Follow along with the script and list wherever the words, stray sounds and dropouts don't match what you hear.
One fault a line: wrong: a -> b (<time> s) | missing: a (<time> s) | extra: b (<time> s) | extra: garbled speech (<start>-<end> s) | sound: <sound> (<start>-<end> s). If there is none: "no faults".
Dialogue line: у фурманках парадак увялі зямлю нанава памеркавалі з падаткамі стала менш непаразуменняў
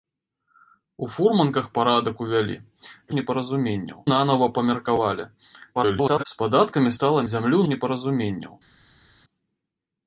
wrong: зямлю -> непаразуменняў (3.2 s)
extra: garbled speech (5.7-6.2 s)
wrong: менш -> зямлю (7.3 s)